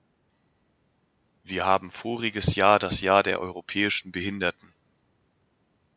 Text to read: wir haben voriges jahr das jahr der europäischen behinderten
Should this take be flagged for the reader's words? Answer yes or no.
no